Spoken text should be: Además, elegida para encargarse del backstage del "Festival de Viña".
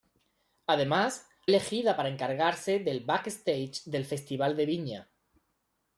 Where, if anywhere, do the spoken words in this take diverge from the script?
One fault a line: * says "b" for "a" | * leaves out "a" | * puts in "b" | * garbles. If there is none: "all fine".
all fine